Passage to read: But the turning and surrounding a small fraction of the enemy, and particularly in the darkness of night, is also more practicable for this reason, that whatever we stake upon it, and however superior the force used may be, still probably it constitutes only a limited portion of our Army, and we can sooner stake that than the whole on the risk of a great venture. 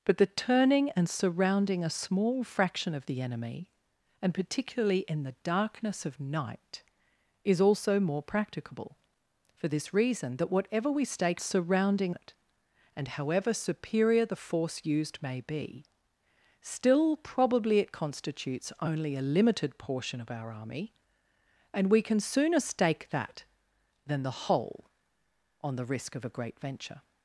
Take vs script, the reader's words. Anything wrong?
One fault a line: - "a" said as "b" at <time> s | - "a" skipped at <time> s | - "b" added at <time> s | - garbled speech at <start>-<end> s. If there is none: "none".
- "upon" said as "surrounding" at 11.4 s